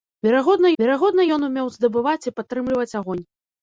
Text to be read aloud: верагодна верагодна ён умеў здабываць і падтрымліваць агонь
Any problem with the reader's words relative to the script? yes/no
no